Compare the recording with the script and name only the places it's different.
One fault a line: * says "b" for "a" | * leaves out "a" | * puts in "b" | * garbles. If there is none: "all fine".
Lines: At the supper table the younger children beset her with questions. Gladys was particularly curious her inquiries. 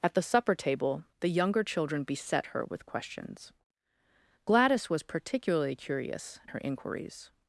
all fine